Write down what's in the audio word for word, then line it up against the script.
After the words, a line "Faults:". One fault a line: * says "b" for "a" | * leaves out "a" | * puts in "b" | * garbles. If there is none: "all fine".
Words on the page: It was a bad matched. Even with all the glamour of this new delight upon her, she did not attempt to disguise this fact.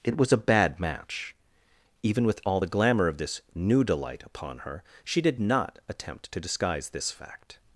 It was a bad match. Even with all the glamour of this new delight upon her, she did not attempt to disguise this fact.
Faults:
* says "match" for "matched"